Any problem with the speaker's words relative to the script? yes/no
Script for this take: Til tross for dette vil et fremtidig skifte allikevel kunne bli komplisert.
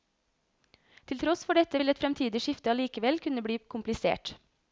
no